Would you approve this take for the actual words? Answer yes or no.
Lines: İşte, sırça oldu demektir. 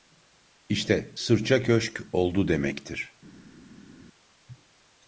no